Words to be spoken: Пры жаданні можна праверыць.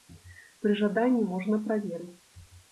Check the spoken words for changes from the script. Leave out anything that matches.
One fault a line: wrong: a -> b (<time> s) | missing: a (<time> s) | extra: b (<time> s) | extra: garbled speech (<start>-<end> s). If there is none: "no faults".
no faults